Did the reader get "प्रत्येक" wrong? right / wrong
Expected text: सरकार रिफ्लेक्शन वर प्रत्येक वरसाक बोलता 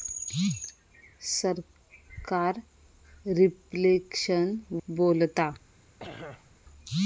wrong